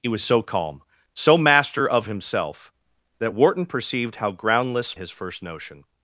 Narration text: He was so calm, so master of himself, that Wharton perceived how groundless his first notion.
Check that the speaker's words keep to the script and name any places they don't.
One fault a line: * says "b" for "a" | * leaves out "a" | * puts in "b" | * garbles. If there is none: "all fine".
all fine